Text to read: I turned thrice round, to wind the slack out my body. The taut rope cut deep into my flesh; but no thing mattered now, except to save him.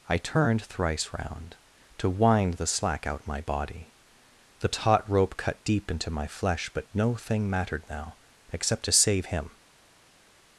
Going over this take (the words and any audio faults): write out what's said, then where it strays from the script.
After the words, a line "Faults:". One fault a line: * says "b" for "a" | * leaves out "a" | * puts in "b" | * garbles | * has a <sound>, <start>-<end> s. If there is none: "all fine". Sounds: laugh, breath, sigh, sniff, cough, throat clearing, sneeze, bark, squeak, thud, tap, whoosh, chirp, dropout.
I turned thrice round, to wind the slack out my body. The taut rope cut deep into my flesh; but no thing mattered now, except to save him.
Faults:
all fine